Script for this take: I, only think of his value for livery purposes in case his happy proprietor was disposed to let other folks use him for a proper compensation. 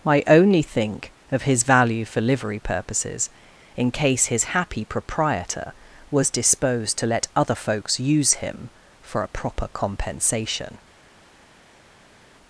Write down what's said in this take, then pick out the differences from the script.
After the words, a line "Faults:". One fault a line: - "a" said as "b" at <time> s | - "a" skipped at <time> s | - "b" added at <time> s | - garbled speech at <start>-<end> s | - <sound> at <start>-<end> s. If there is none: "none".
I, only think of his value for livery purposes in case his happy proprietor was disposed to let other folks use him for a proper compensation.
Faults:
none